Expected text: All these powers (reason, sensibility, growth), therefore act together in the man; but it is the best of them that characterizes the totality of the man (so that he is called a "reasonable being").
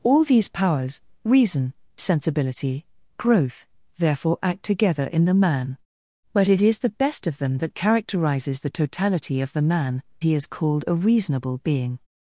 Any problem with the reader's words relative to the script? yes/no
yes